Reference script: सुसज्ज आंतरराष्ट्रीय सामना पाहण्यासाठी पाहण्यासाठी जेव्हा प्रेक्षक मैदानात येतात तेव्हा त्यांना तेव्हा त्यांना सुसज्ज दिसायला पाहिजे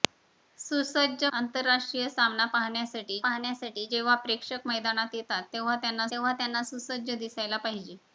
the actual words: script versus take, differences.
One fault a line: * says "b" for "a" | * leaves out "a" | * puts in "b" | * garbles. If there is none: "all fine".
all fine